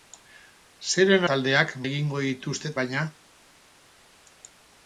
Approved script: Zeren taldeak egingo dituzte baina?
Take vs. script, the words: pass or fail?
pass